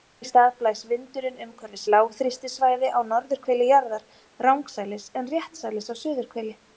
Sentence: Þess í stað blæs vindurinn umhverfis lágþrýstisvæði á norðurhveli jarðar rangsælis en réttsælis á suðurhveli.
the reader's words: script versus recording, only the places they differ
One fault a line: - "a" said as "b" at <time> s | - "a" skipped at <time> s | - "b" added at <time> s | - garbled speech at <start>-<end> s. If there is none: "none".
none